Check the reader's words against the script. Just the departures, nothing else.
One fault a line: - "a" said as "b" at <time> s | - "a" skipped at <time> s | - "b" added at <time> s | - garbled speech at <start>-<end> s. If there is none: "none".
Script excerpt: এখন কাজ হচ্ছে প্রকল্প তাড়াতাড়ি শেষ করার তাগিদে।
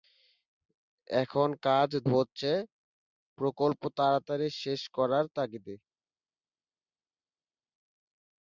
none